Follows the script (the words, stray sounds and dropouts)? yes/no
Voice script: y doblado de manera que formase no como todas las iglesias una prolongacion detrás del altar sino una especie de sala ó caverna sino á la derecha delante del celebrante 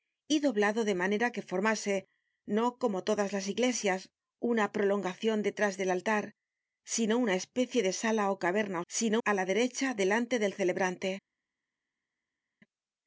yes